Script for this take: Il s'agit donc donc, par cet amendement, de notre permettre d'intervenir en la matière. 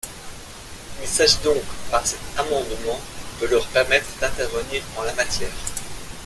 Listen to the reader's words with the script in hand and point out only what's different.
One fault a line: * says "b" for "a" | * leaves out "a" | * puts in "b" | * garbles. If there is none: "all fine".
* leaves out "donc"
* says "leur" for "notre"